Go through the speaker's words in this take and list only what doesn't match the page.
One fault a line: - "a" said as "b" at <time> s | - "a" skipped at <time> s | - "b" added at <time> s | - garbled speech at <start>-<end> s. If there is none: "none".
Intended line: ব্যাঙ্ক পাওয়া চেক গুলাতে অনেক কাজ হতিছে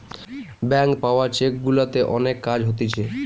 none